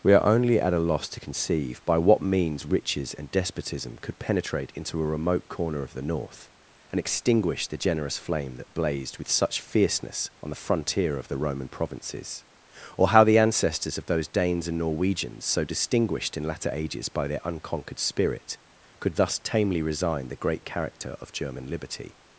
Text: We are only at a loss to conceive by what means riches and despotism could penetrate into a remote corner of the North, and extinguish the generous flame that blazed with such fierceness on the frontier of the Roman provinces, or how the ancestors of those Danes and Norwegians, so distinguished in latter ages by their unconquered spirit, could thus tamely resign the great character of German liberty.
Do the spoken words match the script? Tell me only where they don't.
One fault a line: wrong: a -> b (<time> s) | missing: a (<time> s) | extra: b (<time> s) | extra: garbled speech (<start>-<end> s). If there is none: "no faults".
no faults